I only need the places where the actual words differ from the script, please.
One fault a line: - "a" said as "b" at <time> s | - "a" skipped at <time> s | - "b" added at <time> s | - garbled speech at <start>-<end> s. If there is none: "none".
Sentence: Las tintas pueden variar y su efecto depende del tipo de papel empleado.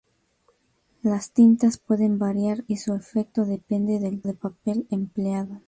- "tipo" skipped at 4.2 s